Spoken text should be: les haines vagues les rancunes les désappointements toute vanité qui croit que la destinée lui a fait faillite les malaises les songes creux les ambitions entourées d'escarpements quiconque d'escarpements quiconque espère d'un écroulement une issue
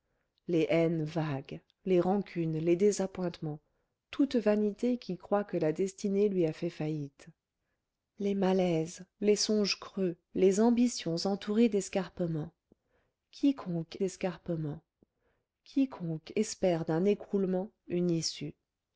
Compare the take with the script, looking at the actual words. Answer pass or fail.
pass